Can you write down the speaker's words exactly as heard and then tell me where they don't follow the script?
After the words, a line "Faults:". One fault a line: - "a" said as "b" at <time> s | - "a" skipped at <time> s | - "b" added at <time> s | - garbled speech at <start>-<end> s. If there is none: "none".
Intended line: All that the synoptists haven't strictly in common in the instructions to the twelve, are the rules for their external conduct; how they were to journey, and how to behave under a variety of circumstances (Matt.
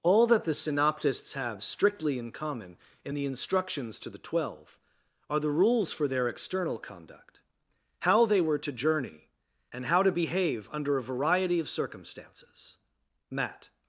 All that the synoptists have strictly in common in the instructions to the twelve, are the rules for their external conduct; how they were to journey, and how to behave under a variety of circumstances (Matt.
Faults:
- "haven't" said as "have" at 1.3 s